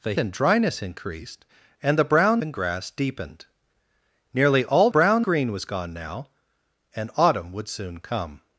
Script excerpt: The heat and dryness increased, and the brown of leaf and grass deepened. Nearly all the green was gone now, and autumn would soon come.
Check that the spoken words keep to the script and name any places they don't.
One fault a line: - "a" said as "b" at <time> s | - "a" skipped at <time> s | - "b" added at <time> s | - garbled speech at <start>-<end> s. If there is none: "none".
- "heat" skipped at 0.1 s
- "of leaf" skipped at 2.4 s
- "the" said as "brown" at 4.9 s